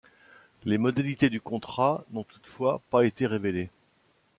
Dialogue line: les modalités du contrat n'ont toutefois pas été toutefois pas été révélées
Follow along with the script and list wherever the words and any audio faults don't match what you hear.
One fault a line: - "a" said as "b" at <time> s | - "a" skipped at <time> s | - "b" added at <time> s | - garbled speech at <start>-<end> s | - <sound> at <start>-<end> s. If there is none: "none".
- "toutefois pas été" skipped at 3.3 s